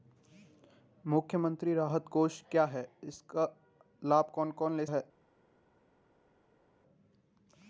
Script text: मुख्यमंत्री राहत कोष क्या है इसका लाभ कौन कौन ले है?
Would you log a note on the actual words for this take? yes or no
no